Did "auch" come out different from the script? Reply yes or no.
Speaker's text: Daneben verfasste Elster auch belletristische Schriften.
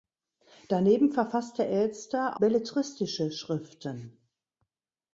yes